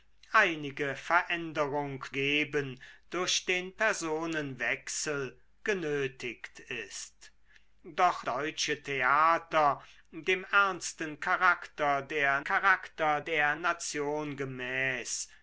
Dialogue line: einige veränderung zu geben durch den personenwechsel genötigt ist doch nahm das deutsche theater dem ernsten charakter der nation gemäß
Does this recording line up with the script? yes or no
no